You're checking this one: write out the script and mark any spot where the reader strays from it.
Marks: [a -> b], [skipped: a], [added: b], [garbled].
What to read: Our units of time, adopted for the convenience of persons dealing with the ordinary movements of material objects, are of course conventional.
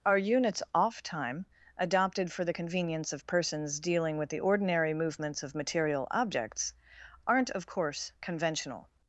Our units [of -> off] time, adopted for the convenience of persons dealing with the ordinary movements of material objects, [are -> aren't] of course conventional.